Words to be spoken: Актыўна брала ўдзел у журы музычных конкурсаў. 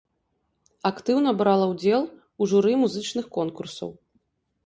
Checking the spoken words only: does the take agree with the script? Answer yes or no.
yes